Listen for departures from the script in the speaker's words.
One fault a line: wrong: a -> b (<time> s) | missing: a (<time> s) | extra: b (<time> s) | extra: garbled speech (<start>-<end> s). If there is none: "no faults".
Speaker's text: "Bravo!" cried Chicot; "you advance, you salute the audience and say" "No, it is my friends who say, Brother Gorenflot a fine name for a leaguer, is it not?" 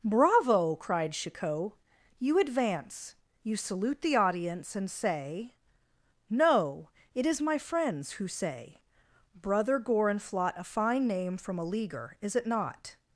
wrong: for -> from (11.4 s)